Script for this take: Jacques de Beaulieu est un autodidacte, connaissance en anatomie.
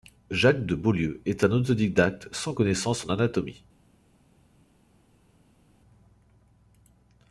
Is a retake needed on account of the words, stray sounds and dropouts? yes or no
yes